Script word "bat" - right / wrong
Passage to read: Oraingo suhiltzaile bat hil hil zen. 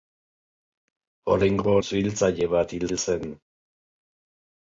right